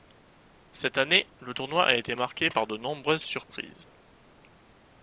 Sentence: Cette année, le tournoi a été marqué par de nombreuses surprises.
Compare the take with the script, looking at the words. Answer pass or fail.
pass